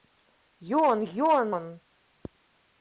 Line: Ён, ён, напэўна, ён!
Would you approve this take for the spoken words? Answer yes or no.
no